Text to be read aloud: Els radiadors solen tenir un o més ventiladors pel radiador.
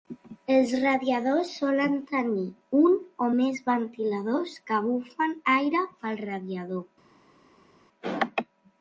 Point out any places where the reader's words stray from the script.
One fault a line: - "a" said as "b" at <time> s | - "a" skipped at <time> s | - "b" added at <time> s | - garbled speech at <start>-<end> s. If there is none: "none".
- "que bufen aire" added at 4.7 s